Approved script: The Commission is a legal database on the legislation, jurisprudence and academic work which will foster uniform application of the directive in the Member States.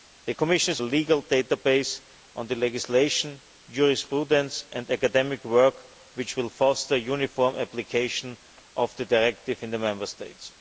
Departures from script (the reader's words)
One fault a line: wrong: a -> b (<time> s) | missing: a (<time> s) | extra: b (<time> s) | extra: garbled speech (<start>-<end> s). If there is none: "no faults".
no faults